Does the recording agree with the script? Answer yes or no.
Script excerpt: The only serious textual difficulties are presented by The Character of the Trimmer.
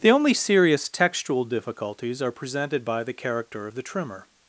yes